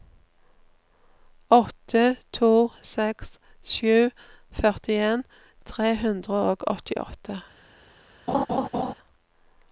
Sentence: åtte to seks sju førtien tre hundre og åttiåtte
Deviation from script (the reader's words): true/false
false